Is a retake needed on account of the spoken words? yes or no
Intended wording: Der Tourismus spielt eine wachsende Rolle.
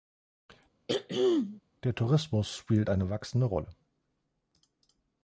no